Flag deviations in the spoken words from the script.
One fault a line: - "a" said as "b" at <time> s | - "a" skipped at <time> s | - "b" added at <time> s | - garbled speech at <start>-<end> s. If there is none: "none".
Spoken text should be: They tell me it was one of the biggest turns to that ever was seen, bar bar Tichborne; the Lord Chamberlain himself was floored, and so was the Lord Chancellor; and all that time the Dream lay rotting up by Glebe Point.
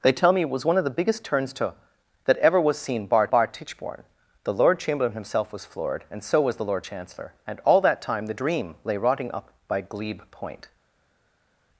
none